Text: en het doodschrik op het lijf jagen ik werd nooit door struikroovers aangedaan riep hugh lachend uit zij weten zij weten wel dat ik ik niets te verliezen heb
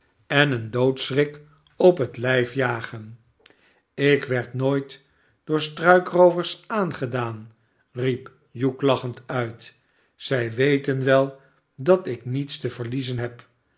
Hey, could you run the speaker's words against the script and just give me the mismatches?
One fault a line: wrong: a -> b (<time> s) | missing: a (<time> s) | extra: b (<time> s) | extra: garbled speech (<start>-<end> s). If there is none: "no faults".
wrong: het -> een (0.5 s)
missing: zij weten (11.0 s)
missing: ik (12.2 s)